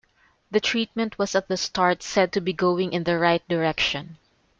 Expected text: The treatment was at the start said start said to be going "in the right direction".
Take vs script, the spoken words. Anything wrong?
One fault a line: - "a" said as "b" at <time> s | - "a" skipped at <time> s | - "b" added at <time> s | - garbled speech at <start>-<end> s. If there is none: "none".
- "start said" skipped at 2.3 s